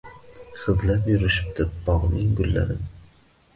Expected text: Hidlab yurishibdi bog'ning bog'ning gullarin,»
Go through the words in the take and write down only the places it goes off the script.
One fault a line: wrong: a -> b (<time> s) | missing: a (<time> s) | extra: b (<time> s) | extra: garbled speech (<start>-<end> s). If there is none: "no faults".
missing: bog'ning (2.4 s)